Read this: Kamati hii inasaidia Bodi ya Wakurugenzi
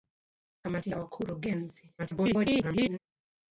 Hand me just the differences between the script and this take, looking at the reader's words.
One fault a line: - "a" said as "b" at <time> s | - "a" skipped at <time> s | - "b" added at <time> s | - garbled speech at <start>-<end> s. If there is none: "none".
- "hii inasaidia Bodi" skipped at 0.9 s
- garbled speech at 2.0-3.0 s